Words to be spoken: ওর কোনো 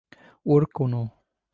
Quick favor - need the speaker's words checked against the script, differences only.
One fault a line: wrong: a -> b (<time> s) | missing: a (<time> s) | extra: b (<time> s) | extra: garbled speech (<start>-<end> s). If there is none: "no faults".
no faults